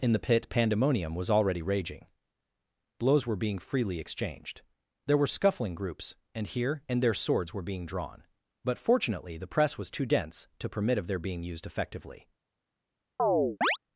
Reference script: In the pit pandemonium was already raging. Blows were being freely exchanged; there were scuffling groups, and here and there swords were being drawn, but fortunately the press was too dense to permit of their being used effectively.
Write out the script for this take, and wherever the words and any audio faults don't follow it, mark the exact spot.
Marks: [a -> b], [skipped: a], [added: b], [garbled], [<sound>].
In the pit pandemonium was already raging. Blows were being freely exchanged; there were scuffling groups, and here and there swords were being drawn, but fortunately the press was too dense to permit of their being used effectively. [chirp]